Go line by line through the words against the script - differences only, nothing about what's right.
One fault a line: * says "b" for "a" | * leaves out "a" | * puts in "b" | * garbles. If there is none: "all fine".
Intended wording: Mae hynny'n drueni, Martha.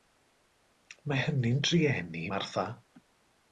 all fine